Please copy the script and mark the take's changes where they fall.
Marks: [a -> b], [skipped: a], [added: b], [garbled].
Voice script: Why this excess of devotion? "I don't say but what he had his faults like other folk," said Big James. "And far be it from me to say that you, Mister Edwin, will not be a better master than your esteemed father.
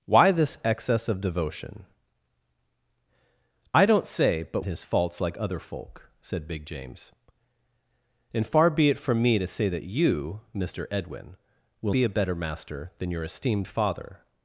Why this excess of devotion? "I don't say but [skipped: what he had] his faults like other folk," said Big James. "And far be it from me to say that you, Mister Edwin, will [skipped: not] be a better master than your esteemed father.